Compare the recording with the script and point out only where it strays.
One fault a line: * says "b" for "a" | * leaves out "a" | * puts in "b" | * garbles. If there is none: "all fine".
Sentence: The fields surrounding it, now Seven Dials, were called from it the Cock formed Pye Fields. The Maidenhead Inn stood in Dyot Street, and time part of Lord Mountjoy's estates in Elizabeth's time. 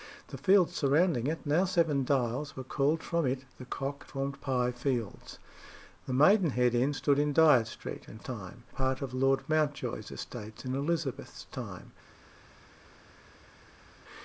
all fine